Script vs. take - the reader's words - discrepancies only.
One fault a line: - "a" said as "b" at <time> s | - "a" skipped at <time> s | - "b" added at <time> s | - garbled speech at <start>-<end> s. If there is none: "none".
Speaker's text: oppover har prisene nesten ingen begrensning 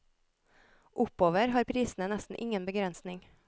none